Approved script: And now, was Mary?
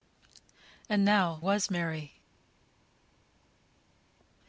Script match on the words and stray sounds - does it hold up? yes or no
yes